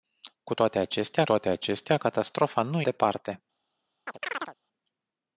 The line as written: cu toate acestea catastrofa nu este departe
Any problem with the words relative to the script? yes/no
yes